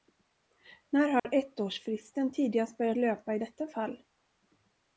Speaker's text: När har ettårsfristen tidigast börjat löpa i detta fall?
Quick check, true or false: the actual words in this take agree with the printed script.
true